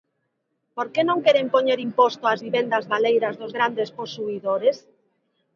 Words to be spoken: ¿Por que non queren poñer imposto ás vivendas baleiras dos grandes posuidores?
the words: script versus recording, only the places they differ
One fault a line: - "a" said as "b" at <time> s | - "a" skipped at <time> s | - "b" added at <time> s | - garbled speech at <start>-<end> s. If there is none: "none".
none